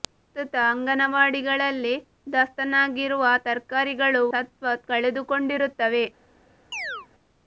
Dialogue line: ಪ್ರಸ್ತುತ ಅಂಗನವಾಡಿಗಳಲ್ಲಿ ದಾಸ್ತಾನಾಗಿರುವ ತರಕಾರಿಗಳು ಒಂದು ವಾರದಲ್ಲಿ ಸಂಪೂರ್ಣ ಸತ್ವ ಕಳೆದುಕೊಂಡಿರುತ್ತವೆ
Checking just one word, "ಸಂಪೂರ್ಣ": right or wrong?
wrong